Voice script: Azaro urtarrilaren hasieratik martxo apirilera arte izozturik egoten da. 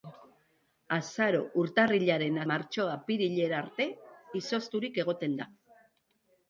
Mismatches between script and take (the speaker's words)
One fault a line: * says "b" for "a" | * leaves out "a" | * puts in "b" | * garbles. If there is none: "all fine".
* leaves out "hasieratik"